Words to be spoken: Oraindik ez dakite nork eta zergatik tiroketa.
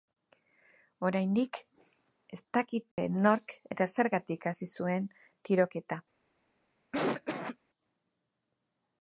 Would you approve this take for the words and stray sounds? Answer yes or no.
no